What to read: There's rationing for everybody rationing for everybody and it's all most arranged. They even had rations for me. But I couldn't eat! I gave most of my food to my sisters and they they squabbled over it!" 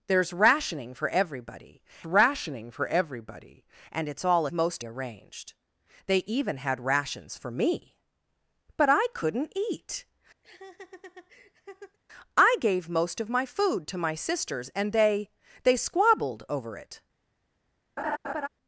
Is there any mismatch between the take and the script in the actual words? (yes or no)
no